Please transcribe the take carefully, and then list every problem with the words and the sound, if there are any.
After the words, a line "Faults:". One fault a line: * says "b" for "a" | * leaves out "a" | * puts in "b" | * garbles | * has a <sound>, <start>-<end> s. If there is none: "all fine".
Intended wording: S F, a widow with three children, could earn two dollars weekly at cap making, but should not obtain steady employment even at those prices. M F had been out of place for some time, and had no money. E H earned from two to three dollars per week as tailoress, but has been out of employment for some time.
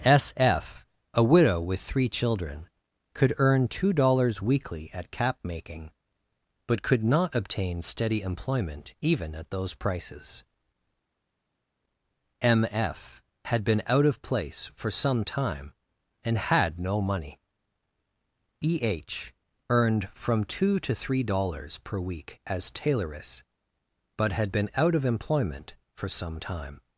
S F, a widow with three children, could earn two dollars weekly at cap making, but could not obtain steady employment even at those prices. M F had been out of place for some time, and had no money. E H earned from two to three dollars per week as tailoress, but had been out of employment for some time.
Faults:
* says "could" for "should"
* says "had" for "has"